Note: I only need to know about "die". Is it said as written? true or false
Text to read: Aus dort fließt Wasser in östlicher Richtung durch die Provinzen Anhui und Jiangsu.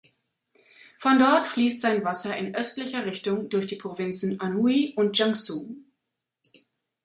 true